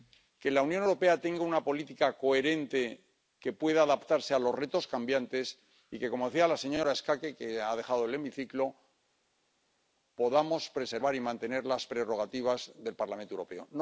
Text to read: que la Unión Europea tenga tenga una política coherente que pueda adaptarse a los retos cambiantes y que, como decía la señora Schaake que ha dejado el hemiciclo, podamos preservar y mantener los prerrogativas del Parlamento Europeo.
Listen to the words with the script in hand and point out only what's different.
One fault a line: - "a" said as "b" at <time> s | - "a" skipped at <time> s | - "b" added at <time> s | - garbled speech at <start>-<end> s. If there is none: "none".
- "tenga" skipped at 1.4 s
- "los" said as "las" at 11.6 s